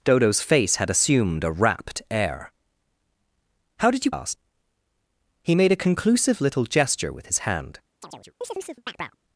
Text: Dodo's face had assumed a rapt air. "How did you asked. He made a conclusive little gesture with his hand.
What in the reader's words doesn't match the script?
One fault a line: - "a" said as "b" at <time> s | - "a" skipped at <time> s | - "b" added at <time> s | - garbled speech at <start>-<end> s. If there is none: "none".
none